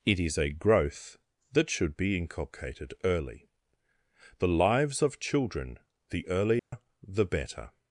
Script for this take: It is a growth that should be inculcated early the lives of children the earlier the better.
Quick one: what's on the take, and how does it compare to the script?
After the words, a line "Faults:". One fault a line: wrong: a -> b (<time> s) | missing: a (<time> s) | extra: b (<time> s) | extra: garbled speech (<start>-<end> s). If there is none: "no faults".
It is a growth that should be inculcated early the lives of children the earlier the better.
Faults:
no faults